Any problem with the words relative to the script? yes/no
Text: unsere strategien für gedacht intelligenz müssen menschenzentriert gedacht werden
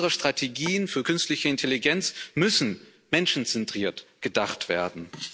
yes